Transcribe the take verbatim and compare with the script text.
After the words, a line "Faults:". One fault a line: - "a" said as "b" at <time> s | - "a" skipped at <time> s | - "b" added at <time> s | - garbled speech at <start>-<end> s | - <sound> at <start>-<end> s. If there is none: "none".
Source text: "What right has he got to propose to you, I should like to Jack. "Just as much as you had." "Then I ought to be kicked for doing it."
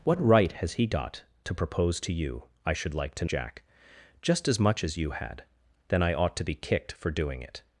"What right has he got to propose to you, I should like to Jack. "Just as much as you had." "Then I ought to be kicked for doing it."
Faults:
none